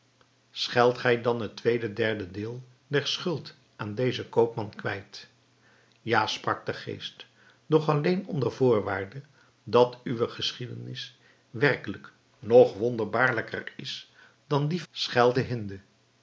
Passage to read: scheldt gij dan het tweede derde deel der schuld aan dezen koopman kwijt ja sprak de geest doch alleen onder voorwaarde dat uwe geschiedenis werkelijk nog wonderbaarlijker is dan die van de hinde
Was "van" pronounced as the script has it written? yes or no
no